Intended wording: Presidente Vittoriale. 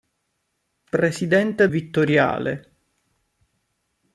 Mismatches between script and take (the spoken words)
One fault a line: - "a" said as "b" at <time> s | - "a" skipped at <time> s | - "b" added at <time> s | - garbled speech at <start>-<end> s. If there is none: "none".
none